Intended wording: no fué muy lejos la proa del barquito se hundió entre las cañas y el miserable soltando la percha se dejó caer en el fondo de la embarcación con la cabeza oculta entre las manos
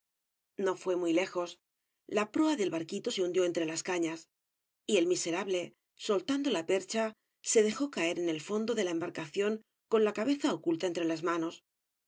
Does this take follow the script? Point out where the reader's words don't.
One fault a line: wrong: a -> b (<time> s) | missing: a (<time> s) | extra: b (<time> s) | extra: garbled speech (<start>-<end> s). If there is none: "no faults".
no faults